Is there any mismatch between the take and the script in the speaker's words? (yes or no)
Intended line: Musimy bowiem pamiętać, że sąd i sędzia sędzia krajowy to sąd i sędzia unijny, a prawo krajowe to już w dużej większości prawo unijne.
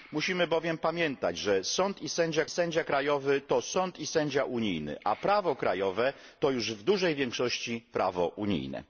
no